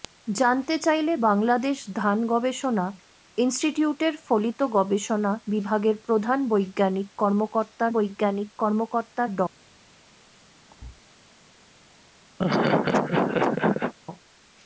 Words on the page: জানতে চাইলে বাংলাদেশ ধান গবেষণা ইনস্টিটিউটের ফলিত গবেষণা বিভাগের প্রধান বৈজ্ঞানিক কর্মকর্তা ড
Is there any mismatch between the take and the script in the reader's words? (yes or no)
yes